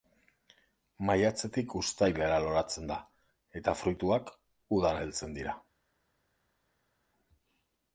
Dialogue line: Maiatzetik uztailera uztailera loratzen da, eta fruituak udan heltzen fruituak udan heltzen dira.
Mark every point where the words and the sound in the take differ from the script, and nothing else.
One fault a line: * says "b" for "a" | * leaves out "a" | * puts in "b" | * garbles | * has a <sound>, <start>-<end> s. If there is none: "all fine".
* leaves out "uztailera"
* leaves out "fruituak udan heltzen"